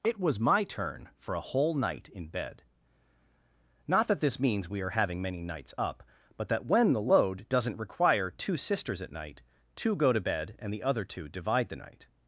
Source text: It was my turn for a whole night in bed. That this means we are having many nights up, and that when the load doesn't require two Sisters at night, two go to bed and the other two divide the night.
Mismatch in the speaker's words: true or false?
true